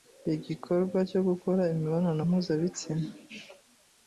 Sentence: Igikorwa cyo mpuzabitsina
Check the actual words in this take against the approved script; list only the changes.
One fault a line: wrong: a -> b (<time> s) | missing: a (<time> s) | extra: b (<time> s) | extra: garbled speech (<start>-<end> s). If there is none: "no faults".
extra: gukora imibonano (1.3 s)